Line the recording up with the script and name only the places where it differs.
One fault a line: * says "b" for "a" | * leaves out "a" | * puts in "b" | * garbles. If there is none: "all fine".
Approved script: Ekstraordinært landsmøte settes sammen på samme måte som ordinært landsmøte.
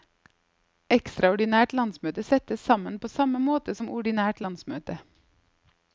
all fine